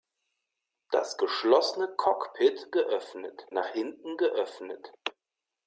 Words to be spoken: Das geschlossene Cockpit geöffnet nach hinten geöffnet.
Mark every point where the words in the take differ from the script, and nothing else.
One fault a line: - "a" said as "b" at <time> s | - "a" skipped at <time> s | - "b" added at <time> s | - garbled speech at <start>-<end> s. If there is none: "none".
none